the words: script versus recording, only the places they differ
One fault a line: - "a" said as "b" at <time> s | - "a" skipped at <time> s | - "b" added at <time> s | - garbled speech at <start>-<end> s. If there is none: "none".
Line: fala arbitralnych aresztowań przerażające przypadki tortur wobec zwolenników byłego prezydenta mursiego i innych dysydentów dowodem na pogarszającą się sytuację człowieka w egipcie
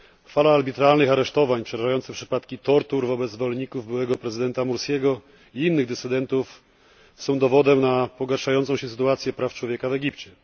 - "są" added at 7.2 s
- "praw" added at 9.3 s